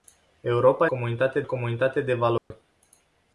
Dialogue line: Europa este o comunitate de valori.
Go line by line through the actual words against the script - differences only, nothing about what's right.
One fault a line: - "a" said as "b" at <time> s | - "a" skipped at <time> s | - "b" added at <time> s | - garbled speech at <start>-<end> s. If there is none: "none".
- "este" said as "comunitate" at 0.9 s